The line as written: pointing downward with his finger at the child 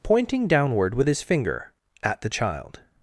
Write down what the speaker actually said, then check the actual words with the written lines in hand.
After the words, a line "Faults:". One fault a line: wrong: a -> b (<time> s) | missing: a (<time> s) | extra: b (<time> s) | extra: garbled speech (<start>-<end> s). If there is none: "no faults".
pointing downward with his finger at the child
Faults:
no faults